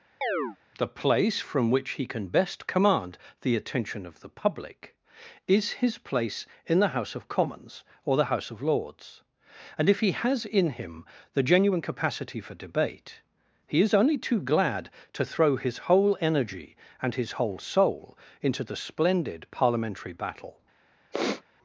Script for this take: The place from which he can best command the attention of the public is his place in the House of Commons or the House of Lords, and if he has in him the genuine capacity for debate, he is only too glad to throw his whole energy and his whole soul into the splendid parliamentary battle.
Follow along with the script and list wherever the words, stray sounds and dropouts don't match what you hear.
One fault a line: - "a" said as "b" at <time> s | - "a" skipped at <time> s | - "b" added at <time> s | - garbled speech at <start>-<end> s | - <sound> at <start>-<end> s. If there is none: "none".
- chirp at 0.2-0.6 s
- sniff at 21.1-21.4 s